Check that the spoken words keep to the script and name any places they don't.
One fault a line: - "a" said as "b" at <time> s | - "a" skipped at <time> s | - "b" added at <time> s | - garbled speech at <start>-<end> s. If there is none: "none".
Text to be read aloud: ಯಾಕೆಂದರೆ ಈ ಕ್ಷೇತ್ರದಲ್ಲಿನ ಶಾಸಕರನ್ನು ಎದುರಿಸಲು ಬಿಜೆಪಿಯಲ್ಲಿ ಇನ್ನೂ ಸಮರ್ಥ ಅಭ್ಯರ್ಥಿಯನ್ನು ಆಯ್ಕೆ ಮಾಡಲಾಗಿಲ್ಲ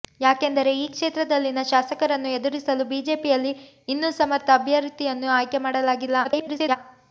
- garbled speech at 6.2-6.8 s